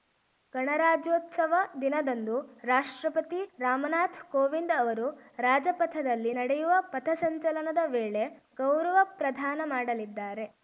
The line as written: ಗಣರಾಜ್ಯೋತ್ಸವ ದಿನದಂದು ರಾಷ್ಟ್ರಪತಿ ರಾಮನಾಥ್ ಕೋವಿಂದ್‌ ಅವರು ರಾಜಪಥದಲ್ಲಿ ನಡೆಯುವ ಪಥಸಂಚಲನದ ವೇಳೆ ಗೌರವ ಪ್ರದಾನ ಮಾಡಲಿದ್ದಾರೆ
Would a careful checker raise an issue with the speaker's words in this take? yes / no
no